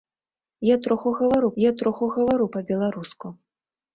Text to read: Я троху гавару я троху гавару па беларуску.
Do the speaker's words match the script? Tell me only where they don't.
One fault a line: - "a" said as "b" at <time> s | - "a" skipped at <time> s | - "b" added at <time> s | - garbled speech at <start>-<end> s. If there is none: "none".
none